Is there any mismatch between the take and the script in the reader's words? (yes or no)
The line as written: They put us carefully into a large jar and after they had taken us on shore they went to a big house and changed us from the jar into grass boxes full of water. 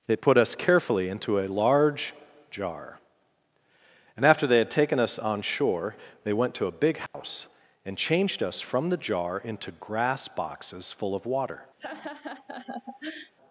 no